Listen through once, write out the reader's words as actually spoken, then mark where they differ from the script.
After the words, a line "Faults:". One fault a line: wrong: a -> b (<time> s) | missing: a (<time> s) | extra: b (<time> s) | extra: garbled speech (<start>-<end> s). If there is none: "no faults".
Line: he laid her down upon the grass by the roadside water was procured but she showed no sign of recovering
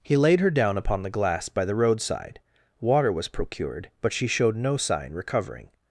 he laid her down upon the glass by the roadside water was procured but she showed no sign recovering
Faults:
wrong: grass -> glass (1.1 s)
missing: of (5.1 s)